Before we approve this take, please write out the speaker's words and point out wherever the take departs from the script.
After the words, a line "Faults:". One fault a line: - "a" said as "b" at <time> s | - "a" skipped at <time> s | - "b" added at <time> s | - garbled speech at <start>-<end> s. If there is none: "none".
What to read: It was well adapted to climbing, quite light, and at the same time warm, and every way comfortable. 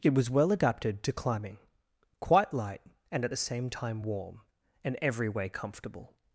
It was well adapted to climbing, quite light, and at the same time warm, and every way comfortable.
Faults:
none